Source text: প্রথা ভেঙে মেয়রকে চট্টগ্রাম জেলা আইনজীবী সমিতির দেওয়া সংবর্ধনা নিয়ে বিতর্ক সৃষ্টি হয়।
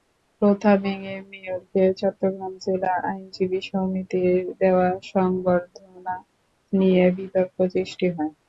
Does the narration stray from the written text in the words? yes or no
no